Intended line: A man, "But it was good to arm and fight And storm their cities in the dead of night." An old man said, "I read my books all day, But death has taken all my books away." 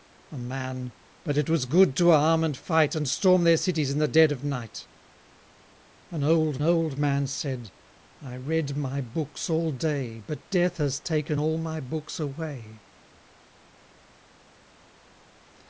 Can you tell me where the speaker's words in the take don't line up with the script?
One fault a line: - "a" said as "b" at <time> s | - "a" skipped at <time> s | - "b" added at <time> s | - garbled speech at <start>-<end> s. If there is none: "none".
- "old" added at 6.6 s